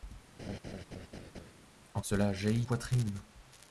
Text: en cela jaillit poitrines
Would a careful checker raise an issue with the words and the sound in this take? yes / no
yes